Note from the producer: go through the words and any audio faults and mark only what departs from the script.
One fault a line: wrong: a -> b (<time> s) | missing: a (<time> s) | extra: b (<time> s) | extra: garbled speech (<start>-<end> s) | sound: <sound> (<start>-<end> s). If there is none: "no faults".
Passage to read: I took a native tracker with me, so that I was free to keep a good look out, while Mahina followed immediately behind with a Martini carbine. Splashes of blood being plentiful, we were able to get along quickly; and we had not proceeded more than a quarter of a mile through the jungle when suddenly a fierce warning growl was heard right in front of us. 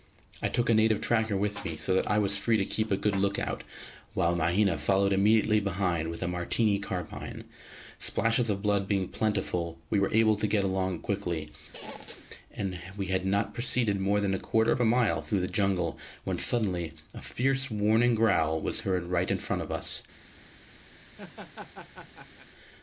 sound: squeak (11.7-12.3 s)
sound: laugh (20.9-22.5 s)